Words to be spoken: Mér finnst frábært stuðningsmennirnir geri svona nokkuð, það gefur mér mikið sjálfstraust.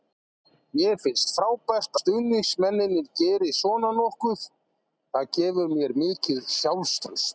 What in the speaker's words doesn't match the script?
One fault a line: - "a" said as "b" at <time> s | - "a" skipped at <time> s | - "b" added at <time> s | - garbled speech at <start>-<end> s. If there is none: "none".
none